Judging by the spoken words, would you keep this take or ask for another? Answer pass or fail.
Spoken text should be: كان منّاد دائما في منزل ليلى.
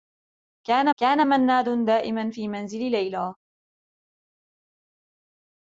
fail